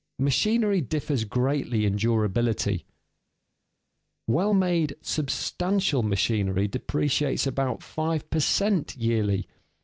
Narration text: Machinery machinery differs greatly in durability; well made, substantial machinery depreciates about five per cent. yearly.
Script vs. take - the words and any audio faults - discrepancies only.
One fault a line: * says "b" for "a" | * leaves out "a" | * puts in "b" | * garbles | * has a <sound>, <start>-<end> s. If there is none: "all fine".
* leaves out "machinery"